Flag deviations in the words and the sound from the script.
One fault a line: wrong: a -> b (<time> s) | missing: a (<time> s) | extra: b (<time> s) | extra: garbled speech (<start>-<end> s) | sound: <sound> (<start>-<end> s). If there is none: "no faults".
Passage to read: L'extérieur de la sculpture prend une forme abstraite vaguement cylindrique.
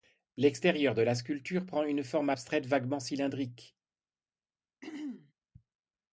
sound: throat clearing (4.8-5.3 s)